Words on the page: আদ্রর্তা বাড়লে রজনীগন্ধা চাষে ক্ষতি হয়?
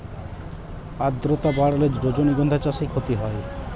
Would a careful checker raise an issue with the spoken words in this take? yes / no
no